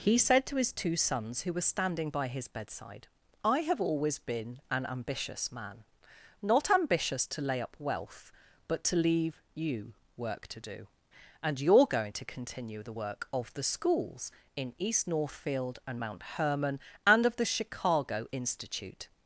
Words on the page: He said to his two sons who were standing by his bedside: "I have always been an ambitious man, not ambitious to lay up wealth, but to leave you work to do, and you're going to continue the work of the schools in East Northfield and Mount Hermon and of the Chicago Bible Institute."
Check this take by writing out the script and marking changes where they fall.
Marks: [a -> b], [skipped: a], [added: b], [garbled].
He said to his two sons who were standing by his bedside: "I have always been an ambitious man, not ambitious to lay up wealth, but to leave you work to do, and you're going to continue the work of the schools in East Northfield and Mount Hermon and of the Chicago [skipped: Bible] Institute."